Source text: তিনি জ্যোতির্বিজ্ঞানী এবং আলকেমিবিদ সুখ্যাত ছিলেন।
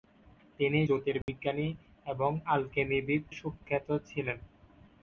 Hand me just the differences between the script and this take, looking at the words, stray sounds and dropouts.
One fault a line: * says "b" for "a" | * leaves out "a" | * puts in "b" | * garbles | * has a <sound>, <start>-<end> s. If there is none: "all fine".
* has a dropout, 1.2-1.3 s